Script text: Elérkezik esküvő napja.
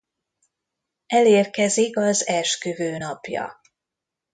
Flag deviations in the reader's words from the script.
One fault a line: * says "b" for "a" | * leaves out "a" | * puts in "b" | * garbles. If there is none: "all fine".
* puts in "az"